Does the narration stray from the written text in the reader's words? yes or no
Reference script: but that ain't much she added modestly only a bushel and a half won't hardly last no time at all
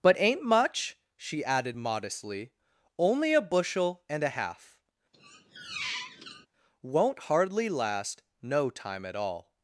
yes